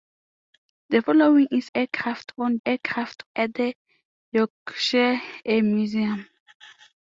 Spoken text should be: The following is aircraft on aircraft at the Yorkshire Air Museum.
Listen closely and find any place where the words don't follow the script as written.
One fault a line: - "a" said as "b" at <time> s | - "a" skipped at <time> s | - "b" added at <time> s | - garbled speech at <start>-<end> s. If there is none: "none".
none